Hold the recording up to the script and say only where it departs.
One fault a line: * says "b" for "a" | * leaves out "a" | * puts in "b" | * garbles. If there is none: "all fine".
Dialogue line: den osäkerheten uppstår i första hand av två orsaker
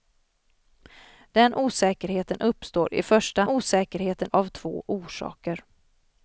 * says "osäkerheten" for "hand"